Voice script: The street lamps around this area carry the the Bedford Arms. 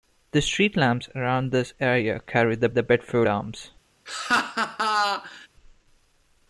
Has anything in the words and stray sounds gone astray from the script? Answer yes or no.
yes